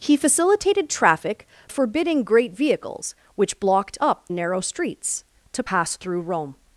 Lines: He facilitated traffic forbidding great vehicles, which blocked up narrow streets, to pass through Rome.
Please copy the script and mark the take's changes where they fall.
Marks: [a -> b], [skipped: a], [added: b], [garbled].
He facilitated traffic forbidding great vehicles, which blocked up narrow streets, to pass through Rome.